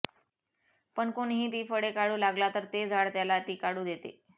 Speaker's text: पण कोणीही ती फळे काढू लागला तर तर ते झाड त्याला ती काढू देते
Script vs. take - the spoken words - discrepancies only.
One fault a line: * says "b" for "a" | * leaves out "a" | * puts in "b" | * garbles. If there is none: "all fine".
* leaves out "तर"